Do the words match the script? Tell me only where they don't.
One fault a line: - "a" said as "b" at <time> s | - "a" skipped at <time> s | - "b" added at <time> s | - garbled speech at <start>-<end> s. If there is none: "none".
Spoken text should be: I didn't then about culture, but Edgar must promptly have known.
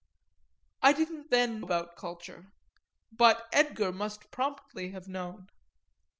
none